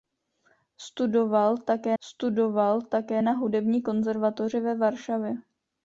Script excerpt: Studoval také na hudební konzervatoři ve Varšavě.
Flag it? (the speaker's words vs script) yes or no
yes